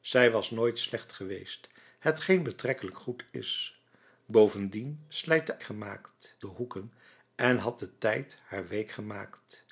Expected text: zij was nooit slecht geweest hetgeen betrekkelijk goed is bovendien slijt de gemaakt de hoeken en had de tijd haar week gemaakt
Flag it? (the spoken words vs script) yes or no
no